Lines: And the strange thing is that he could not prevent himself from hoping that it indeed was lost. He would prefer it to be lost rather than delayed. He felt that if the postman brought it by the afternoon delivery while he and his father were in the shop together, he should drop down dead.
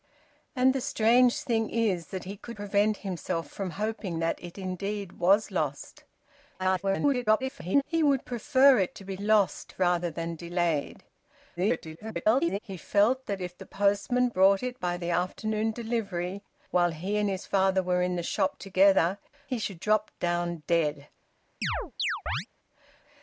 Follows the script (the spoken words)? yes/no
no